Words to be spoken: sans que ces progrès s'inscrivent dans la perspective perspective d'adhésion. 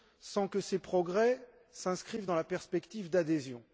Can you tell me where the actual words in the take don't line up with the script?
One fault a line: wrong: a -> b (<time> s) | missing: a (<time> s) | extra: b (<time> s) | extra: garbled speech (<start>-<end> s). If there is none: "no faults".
missing: perspective (3.1 s)